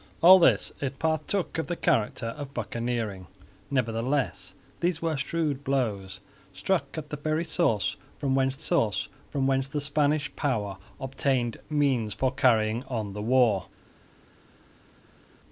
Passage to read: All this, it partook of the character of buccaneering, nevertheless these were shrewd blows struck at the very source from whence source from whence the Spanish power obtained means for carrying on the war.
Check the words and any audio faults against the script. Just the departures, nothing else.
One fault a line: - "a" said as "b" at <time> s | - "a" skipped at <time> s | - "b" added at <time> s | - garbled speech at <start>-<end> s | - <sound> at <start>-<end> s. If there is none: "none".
none